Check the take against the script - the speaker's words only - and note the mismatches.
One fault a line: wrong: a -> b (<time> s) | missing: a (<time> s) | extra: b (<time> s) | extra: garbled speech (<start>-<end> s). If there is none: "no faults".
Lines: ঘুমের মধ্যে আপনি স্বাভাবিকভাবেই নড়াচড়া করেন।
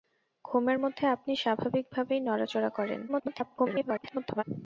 extra: garbled speech (3.1-4.4 s)